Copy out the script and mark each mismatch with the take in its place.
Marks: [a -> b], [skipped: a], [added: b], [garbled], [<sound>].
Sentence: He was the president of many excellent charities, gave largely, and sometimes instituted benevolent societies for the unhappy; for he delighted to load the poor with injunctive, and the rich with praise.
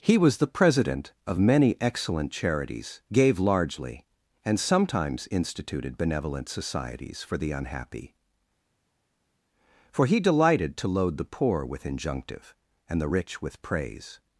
He was the president of many excellent charities, gave largely, and sometimes instituted benevolent societies for the unhappy; for he delighted to load the poor with injunctive, and the rich with praise.